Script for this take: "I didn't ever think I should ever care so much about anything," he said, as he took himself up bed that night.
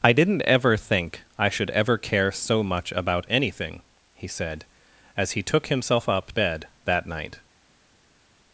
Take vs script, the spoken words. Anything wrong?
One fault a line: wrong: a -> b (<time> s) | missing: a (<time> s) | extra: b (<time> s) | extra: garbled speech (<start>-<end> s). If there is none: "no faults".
no faults